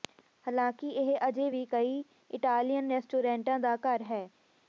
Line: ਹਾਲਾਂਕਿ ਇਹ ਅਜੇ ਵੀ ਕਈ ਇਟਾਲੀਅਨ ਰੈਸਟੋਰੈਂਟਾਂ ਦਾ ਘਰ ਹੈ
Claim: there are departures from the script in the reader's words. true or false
false